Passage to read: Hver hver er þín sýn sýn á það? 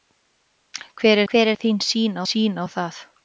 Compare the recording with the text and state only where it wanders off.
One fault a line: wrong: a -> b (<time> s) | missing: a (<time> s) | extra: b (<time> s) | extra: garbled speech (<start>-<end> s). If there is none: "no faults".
no faults